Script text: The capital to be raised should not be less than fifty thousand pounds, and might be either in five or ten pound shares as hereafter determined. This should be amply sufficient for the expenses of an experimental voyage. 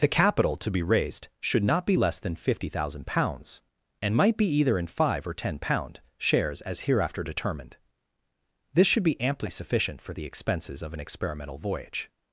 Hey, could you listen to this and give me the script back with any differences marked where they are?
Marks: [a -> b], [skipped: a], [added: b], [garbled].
The capital to be raised should not be less than fifty thousand pounds, and might be either in five or ten pound shares as hereafter determined. This should be amply sufficient for the expenses of an experimental voyage.